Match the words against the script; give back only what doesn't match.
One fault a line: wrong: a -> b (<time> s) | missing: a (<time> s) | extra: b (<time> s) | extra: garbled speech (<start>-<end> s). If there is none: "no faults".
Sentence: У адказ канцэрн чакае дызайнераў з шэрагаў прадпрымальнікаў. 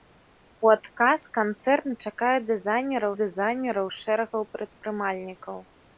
extra: дызайнераў (3.2 s)